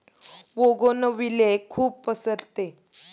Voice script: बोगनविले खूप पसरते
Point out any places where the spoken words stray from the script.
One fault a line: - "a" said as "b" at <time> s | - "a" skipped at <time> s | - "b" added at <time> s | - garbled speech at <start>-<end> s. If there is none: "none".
none